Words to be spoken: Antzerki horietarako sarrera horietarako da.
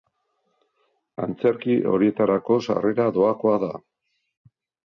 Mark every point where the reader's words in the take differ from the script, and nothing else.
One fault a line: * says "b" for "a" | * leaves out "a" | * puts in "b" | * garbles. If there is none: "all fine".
* says "doakoa" for "horietarako"